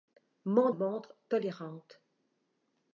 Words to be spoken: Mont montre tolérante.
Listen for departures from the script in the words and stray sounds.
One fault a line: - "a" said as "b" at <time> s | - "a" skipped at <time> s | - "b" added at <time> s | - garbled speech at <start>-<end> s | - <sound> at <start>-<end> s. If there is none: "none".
none